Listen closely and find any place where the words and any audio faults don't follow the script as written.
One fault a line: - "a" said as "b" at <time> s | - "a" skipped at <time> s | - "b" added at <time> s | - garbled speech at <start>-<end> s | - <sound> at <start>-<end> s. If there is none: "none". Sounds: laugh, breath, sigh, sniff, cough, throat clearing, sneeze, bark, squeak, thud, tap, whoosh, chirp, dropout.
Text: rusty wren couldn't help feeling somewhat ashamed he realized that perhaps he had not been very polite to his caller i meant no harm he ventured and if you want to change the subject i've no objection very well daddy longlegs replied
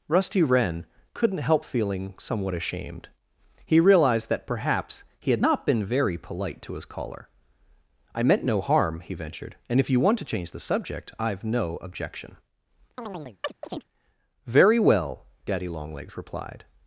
- chirp at 13.0-13.8 s